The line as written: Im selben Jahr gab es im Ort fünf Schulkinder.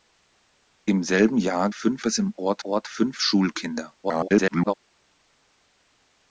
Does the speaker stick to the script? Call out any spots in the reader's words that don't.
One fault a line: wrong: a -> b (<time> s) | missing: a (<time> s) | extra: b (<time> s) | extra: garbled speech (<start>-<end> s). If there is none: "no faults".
wrong: gab -> fünf (1.7 s)
extra: Ort (2.6 s)
extra: garbled speech (4.0-4.7 s)